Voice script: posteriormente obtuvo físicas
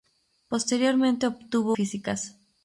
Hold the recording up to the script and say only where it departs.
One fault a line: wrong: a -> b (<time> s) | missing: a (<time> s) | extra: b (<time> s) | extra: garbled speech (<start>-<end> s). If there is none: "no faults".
no faults